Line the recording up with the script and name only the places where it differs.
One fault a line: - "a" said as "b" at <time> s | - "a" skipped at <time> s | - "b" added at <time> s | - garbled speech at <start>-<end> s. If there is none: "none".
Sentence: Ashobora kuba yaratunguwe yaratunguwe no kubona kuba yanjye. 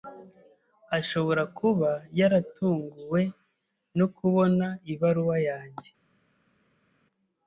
- "yaratunguwe" skipped at 3.2 s
- "kuba" said as "ibaruwa" at 4.9 s